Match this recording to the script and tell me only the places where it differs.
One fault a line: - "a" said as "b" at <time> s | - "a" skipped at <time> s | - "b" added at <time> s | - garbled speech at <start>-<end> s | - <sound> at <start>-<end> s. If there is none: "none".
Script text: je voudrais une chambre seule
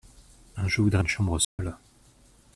- dropout at 1.4-1.6 s